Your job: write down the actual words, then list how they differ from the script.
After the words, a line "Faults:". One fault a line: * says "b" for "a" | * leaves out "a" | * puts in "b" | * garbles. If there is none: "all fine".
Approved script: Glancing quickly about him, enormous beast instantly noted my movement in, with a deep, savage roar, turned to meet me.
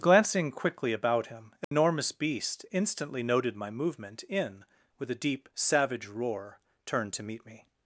Glancing quickly about him, enormous beast instantly noted my movement in, with a deep, savage roar, turned to meet me.
Faults:
all fine